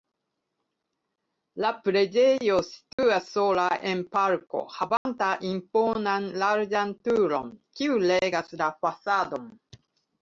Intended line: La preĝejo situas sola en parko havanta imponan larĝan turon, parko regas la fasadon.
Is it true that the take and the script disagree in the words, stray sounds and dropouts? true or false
true